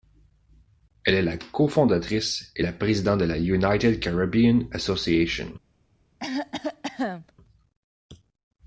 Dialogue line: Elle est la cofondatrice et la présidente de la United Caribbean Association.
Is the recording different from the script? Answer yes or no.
no